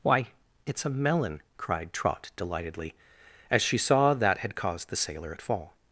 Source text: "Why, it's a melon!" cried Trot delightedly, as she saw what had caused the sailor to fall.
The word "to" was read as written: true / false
false